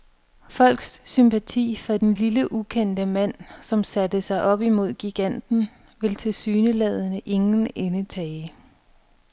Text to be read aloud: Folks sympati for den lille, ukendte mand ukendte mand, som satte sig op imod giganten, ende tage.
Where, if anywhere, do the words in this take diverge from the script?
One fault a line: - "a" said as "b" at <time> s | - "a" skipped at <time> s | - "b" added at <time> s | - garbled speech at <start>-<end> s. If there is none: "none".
- "ukendte mand" skipped at 3.3 s
- "vil tilsyneladende ingen" added at 6.0 s